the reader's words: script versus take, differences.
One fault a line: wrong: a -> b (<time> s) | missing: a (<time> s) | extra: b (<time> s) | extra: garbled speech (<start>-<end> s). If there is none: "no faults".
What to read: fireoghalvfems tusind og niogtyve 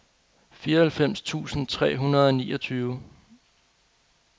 extra: tre hundrede (1.7 s)